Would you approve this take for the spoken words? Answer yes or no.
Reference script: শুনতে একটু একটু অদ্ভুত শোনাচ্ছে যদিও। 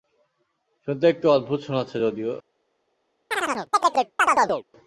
no